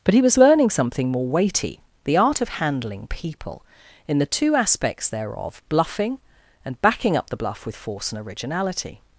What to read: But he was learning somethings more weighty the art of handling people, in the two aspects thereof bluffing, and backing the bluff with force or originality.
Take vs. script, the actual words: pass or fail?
fail